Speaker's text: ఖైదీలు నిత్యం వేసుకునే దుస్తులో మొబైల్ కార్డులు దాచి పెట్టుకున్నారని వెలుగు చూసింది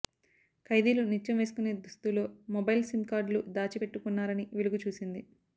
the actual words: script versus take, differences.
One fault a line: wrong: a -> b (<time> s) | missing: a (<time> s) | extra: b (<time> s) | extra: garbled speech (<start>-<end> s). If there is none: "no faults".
extra: సిమ్ (2.8 s)